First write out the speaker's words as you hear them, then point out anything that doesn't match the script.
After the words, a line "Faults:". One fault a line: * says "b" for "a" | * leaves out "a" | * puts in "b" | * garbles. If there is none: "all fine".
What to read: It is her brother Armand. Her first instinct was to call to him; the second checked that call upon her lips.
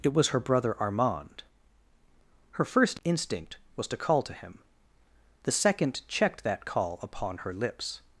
It was her brother Armand. Her first instinct was to call to him; the second checked that call upon her lips.
Faults:
* says "was" for "is"